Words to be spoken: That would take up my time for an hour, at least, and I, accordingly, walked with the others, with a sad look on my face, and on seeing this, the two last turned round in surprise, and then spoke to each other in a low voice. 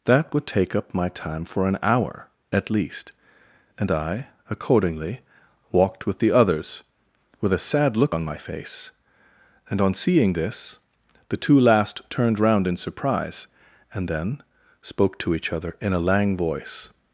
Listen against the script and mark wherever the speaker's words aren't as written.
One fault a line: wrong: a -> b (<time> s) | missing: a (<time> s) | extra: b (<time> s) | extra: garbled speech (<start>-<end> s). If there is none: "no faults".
wrong: low -> lang (16.0 s)